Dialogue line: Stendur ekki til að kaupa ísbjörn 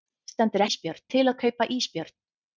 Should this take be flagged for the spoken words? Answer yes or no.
yes